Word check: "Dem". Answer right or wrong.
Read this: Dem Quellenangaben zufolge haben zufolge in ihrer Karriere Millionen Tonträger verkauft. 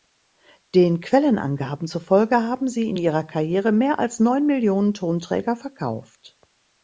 wrong